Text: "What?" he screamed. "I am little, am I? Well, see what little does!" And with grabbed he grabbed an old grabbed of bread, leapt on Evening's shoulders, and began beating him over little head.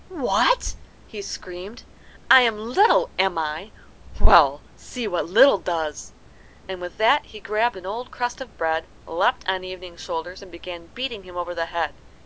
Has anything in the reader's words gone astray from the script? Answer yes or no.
yes